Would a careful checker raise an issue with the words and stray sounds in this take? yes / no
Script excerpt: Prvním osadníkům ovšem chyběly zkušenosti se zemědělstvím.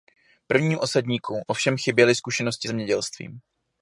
yes